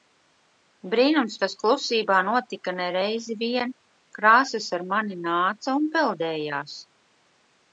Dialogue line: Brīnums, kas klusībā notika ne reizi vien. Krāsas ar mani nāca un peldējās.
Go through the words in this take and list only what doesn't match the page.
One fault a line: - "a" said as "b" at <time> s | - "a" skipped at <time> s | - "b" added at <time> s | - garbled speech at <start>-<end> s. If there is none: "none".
none